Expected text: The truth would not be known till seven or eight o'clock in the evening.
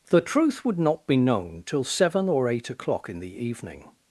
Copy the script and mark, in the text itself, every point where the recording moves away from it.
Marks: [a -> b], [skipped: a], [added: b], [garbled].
The truth would not be known till seven or eight o'clock in the evening.